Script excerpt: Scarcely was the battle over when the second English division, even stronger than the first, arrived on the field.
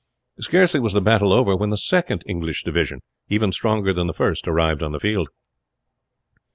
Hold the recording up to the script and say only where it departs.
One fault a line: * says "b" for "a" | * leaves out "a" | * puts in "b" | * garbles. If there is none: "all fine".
all fine